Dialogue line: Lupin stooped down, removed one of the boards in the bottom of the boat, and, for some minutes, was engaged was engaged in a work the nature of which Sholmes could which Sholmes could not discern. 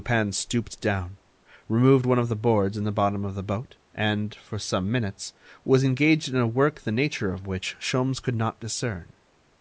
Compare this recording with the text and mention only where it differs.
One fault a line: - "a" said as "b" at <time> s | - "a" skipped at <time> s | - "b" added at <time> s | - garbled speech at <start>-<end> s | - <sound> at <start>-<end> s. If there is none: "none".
- "was engaged" skipped at 6.3 s
- "which Sholmes could" skipped at 8.4 s